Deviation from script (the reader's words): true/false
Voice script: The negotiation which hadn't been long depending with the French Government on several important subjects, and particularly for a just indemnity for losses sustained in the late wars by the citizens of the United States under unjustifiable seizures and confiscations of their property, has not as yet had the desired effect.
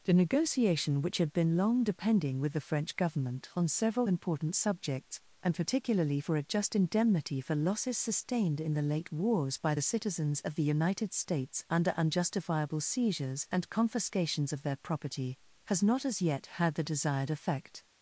true